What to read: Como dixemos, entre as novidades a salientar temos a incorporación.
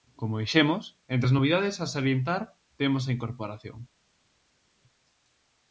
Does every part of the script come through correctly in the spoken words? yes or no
yes